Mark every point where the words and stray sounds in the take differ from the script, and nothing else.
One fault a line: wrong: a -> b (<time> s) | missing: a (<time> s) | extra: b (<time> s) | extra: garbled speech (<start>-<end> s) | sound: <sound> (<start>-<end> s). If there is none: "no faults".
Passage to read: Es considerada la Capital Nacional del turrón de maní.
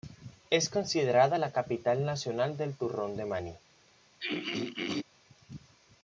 sound: throat clearing (4.2-5.0 s)